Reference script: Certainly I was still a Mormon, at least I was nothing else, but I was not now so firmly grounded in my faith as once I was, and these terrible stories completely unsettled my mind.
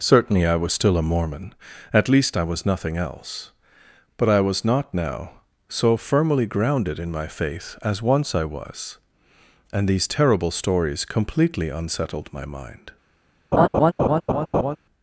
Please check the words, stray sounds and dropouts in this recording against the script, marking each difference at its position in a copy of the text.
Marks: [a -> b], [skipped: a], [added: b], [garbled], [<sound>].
Certainly I was still a Mormon, at least I was nothing else, but I was not now so firmly grounded in my faith as once I was, and these terrible stories completely unsettled my mind. [laugh]